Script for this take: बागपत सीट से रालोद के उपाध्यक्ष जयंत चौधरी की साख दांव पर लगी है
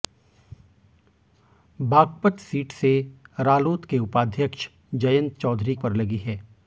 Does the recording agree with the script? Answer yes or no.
no